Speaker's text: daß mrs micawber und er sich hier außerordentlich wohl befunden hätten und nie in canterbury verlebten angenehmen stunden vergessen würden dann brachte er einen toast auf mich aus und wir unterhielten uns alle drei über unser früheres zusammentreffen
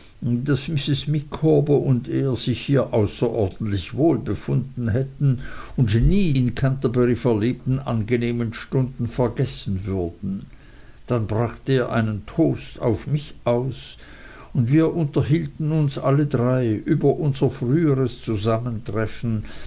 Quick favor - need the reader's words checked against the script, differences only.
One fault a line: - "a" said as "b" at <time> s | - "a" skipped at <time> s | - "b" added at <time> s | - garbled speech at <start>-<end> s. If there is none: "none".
none